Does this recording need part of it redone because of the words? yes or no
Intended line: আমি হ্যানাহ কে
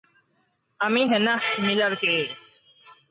yes